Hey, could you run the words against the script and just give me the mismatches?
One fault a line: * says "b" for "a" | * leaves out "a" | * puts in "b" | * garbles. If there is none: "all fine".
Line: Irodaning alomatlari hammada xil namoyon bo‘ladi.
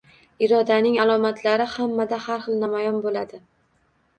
* puts in "har"